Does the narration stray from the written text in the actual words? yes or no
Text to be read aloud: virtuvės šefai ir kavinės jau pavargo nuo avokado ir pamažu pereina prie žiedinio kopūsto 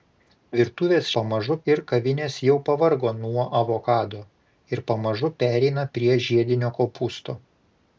yes